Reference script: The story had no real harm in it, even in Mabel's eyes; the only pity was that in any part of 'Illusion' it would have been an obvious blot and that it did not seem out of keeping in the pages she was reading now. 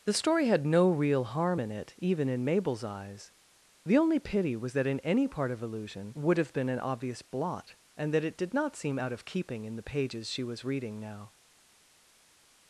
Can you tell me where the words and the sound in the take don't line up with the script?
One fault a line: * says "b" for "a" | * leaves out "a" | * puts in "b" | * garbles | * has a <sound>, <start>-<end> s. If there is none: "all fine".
* leaves out "it"